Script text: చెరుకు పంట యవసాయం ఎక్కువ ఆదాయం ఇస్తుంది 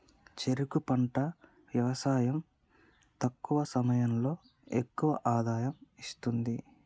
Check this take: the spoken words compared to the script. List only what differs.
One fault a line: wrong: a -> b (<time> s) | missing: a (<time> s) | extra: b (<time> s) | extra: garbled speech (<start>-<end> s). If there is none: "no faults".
extra: తక్కువ సమయంలో (3.2 s)